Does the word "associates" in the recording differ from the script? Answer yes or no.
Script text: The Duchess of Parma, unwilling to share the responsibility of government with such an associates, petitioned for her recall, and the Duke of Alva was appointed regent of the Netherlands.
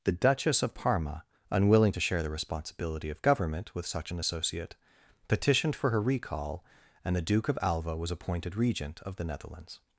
yes